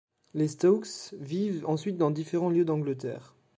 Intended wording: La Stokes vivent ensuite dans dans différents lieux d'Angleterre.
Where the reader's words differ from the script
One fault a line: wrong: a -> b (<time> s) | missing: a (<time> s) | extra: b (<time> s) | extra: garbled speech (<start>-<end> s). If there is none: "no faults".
wrong: La -> Les (0.3 s)
missing: dans (2.1 s)